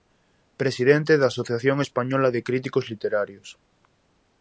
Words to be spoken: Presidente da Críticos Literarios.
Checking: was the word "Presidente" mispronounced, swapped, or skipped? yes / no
no